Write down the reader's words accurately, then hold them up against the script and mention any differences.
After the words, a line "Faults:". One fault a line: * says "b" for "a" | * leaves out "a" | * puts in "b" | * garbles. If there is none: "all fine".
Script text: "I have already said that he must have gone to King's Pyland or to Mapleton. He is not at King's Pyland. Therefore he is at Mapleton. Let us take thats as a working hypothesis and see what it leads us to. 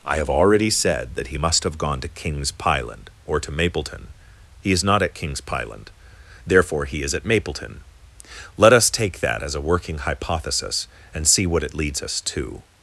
"I have already said that he must have gone to King's Pyland or to Mapleton. He is not at King's Pyland. Therefore he is at Mapleton. Let us take that as a working hypothesis and see what it leads us to.
Faults:
* says "that" for "thats"